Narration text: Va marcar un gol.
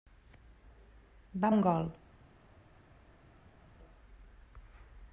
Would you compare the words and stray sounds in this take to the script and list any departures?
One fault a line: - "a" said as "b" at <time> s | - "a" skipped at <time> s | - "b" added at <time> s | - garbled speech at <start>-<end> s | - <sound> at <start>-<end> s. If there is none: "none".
- "marcar" skipped at 1.5 s